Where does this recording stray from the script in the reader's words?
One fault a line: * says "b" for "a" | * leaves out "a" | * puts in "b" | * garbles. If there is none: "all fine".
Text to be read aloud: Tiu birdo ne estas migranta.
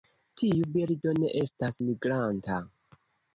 all fine